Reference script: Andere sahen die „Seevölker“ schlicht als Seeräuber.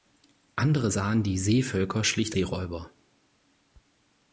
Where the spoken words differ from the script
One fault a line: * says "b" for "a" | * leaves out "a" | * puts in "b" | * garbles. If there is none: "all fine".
* leaves out "als"